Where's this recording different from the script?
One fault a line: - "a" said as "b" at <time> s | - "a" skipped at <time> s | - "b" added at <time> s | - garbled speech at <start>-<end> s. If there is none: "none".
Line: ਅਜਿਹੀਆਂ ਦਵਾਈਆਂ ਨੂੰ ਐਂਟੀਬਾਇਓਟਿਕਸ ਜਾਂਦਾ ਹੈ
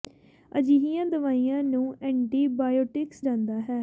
none